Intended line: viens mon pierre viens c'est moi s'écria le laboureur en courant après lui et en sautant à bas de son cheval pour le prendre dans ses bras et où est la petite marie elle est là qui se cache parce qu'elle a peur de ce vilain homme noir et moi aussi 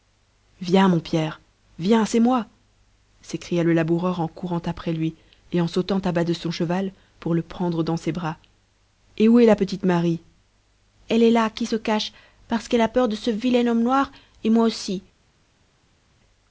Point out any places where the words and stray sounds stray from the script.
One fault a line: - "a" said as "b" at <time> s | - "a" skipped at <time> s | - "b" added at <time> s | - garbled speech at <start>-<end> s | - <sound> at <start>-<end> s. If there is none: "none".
none